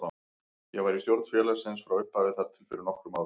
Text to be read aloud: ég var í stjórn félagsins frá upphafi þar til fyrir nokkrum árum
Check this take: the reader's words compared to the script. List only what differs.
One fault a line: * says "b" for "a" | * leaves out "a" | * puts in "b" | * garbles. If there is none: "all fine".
all fine